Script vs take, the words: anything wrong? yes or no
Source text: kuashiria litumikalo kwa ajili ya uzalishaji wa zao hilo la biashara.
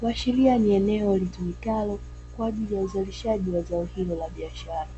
yes